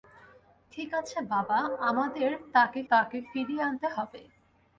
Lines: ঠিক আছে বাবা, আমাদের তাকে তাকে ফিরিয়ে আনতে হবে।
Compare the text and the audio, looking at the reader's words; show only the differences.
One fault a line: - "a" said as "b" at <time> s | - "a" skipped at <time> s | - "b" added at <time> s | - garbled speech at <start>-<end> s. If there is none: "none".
none